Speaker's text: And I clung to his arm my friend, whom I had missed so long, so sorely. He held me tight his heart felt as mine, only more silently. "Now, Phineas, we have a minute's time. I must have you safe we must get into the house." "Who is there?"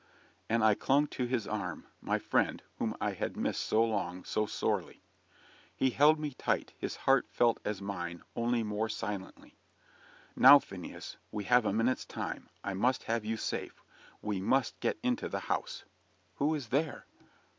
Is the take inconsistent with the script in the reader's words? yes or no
no